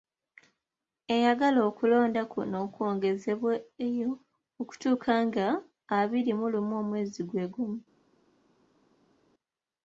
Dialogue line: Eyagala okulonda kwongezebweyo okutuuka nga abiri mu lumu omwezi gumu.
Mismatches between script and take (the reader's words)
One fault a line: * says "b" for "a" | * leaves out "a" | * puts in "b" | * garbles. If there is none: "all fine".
* puts in "kuno"
* puts in "gwe"